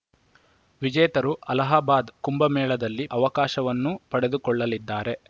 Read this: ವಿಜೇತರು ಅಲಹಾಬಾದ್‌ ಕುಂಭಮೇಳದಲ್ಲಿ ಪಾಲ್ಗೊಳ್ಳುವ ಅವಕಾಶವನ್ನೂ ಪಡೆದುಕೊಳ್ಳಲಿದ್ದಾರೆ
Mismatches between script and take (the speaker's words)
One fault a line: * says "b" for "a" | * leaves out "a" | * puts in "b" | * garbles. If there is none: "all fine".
* leaves out "ಪಾಲ್ಗೊಳ್ಳುವ"